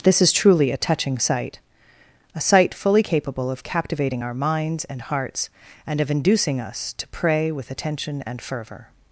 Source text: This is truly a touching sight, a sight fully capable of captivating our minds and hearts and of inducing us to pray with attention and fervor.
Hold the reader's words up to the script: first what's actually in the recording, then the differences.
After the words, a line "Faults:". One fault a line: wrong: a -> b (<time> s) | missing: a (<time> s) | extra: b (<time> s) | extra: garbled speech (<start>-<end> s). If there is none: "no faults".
This is truly a touching sight, a sight fully capable of captivating our minds and hearts and of inducing us to pray with attention and fervor.
Faults:
no faults